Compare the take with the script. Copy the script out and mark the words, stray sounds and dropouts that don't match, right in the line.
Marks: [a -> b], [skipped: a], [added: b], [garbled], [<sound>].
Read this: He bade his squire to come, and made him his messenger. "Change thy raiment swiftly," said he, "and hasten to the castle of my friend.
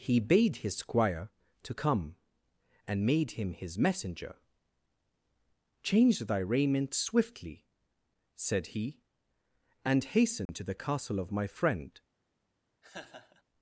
He bade his squire to come, and made him his messenger. "Change thy raiment swiftly," said he, "and hasten [dropout] to the castle of my friend. [laugh]